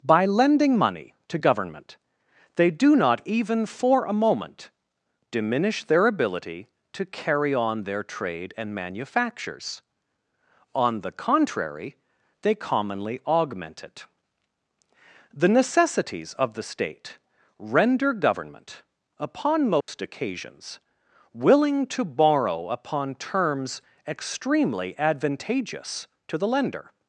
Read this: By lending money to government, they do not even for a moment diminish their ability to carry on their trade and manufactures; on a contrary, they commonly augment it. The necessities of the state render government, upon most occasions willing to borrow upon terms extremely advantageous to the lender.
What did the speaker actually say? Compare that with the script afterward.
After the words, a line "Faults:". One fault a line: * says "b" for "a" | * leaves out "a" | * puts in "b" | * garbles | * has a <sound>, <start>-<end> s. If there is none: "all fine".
By lending money to government, they do not even for a moment diminish their ability to carry on their trade and manufactures; on the contrary, they commonly augment it. The necessities of the state render government, upon most occasions willing to borrow upon terms extremely advantageous to the lender.
Faults:
* says "the" for "a"
* has a dropout, 19.8-19.9 s